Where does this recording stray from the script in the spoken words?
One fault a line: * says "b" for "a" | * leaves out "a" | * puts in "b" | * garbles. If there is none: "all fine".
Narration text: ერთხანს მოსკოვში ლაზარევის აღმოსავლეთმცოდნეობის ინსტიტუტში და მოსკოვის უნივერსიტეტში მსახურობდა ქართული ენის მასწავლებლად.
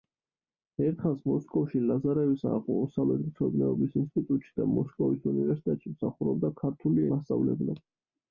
* leaves out "ენის"